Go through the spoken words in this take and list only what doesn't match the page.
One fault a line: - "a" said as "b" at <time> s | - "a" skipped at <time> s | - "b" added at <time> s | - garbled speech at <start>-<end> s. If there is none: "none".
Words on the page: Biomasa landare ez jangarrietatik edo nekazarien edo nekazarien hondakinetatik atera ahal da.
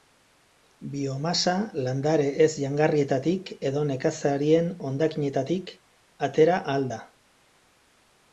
- "edo nekazarien" skipped at 4.7 s